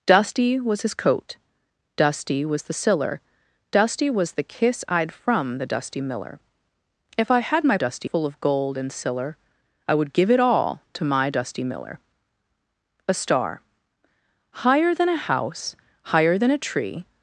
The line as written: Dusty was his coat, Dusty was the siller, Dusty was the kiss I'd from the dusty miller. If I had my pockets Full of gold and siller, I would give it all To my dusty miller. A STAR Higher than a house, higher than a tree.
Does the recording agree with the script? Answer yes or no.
no